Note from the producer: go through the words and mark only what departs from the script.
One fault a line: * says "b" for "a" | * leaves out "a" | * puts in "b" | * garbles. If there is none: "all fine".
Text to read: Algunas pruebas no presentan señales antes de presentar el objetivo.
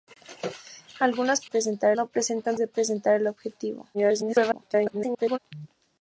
* says "presentar" for "pruebas"
* leaves out "señales antes"
* garbles